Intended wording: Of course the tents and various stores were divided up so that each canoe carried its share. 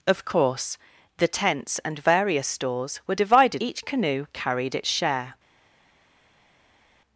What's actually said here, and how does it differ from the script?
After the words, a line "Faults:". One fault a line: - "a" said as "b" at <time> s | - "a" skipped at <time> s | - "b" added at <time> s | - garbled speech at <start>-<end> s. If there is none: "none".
Of course the tents and various stores were divided each canoe carried its share.
Faults:
- "up so that" skipped at 3.6 s